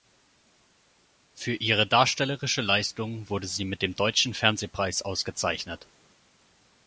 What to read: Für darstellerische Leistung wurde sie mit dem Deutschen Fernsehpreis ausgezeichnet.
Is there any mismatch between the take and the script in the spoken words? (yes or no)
yes